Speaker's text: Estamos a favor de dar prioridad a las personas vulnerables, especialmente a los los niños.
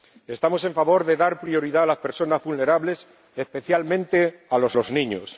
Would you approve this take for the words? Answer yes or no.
yes